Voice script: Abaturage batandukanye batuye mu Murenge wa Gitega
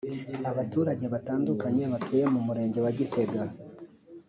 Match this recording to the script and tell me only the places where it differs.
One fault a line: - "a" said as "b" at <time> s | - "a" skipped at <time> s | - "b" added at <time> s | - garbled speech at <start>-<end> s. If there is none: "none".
none